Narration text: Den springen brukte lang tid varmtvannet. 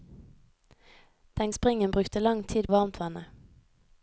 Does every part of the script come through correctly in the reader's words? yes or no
yes